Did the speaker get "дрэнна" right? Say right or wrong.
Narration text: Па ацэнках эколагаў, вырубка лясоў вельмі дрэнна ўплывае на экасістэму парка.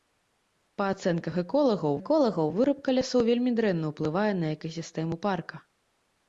right